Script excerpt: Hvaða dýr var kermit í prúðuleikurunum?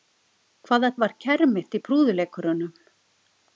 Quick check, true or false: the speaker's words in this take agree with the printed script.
false